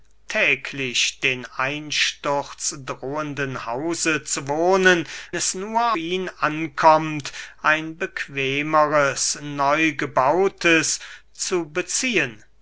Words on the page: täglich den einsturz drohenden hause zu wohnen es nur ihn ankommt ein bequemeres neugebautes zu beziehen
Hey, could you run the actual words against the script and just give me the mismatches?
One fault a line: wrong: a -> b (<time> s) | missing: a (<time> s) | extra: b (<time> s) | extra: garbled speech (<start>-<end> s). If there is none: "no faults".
no faults